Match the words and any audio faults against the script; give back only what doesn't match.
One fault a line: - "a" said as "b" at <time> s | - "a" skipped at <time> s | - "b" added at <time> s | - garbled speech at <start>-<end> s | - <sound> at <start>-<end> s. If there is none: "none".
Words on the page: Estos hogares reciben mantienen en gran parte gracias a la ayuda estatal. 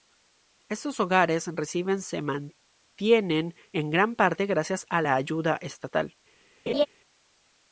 - "se" added at 2.0 s
- laugh at 6.7-6.9 s